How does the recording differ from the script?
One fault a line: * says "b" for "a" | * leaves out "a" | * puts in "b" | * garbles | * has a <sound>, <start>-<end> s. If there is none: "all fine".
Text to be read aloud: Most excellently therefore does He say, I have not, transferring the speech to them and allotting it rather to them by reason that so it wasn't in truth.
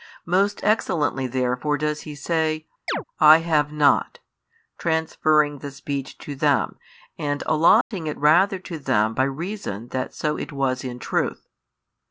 * has a chirp, 2.9-3.0 s
* has a dropout, 7.8-7.9 s
* says "was" for "wasn't"